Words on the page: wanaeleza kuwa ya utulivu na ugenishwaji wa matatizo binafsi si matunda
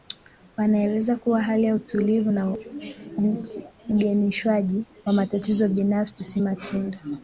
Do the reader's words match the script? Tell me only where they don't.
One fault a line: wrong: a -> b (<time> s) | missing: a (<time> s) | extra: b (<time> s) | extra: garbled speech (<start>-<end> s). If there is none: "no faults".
extra: hali (1.4 s)